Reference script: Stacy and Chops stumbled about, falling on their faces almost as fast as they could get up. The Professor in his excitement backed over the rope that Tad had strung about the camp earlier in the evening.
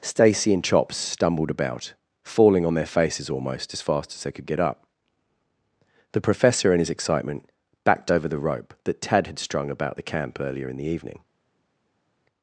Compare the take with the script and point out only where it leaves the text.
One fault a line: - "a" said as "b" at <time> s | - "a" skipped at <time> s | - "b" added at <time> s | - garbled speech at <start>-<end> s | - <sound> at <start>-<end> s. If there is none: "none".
none